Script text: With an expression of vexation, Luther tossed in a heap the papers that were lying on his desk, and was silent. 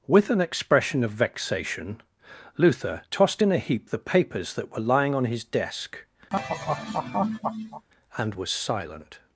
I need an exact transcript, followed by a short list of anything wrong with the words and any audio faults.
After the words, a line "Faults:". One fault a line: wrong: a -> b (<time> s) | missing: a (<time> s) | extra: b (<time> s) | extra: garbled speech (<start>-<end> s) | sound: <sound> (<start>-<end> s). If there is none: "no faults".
With an expression of vexation, Luther tossed in a heap the papers that were lying on his desk, and was silent.
Faults:
sound: laugh (6.3-7.9 s)